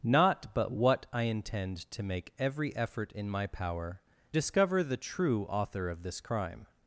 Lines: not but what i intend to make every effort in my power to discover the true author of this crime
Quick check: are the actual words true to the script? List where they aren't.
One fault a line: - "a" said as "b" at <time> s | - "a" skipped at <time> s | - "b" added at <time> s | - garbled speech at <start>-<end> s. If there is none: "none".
- "to" skipped at 4.0 s